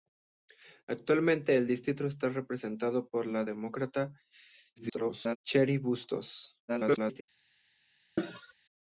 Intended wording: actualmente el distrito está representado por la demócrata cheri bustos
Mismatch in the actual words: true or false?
true